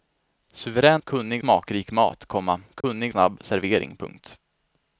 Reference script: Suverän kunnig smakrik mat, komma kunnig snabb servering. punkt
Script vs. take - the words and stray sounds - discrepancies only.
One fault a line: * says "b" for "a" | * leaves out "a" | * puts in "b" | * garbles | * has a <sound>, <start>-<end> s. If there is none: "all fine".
* has a dropout, 2.8-2.8 s